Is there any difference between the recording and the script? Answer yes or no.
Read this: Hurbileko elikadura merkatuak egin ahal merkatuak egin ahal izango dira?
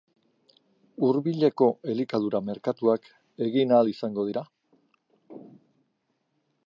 yes